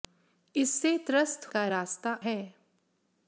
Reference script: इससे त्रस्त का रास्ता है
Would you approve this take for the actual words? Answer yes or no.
yes